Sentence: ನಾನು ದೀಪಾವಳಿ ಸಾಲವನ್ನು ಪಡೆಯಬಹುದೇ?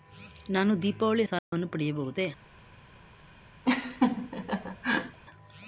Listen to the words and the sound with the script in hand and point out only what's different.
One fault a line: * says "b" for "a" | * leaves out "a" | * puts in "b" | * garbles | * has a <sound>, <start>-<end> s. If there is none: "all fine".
* has a dropout, 1.4-1.5 s
* has a laugh, 3.6-5.2 s